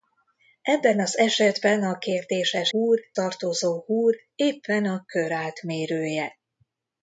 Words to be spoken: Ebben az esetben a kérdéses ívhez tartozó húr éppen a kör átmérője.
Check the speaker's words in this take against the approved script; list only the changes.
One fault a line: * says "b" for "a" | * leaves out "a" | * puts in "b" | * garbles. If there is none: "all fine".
* says "húr" for "ívhez"